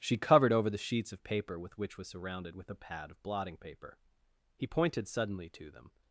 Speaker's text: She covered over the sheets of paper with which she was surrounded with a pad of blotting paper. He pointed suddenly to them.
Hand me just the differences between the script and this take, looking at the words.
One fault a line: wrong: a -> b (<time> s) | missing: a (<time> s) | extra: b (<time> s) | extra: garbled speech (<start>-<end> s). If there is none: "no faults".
missing: she (1.9 s)